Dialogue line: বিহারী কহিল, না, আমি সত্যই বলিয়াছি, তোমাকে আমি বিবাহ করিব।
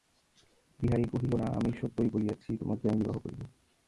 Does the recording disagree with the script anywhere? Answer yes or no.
no